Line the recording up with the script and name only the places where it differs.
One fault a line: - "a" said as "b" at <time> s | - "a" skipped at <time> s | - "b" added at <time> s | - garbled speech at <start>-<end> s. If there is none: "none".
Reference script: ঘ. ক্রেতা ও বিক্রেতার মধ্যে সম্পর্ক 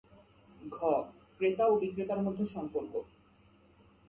none